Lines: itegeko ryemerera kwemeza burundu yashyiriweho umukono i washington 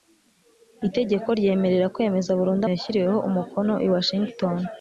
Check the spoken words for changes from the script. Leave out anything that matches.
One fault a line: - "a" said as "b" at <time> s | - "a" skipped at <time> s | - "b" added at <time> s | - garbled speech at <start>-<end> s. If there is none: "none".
none